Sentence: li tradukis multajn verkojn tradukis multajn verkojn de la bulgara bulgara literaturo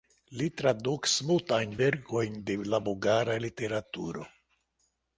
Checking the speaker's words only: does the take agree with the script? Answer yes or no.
no